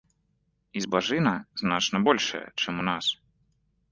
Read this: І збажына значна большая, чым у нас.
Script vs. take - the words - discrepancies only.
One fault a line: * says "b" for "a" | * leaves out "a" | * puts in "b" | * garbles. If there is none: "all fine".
all fine